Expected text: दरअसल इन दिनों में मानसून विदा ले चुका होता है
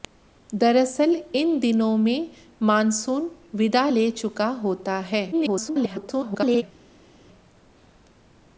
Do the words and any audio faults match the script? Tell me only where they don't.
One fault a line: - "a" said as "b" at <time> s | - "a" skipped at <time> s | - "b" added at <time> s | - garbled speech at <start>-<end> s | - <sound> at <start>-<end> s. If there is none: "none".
- garbled speech at 5.3-6.6 s